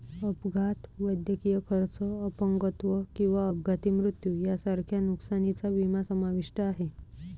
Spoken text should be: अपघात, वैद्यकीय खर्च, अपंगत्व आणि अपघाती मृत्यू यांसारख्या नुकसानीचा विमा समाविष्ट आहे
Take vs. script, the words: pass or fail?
fail